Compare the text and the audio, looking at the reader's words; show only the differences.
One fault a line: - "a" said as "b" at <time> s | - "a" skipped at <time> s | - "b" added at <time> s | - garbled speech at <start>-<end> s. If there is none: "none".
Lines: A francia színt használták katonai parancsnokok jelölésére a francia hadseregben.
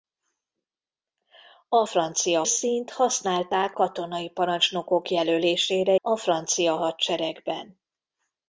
none